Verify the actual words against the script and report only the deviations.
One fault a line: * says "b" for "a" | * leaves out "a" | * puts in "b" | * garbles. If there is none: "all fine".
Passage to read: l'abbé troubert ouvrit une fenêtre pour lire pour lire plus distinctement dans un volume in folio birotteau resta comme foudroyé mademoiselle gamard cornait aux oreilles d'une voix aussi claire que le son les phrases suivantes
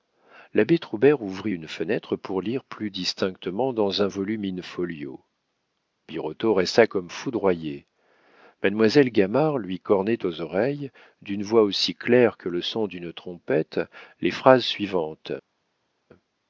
* leaves out "pour lire"
* puts in "lui"
* puts in "d'une trompette"